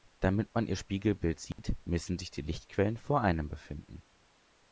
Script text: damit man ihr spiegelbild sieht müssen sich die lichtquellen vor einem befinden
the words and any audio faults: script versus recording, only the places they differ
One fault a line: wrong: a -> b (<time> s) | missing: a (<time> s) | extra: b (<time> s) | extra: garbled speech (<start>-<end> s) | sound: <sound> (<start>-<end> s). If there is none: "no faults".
sound: dropout (1.5-1.6 s)